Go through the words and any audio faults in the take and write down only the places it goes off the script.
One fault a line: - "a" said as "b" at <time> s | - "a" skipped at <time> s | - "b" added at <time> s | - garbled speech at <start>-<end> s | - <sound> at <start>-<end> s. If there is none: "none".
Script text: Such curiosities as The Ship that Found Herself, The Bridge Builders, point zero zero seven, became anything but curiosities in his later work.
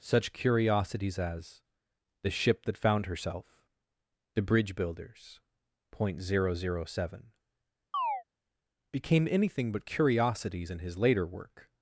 - chirp at 7.9-8.2 s